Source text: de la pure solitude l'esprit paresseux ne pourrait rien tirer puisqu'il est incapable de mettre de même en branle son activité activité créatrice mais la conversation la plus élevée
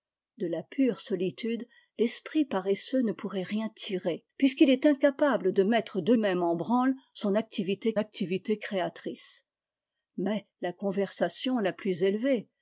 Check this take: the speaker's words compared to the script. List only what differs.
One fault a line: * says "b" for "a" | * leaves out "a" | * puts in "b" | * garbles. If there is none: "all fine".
all fine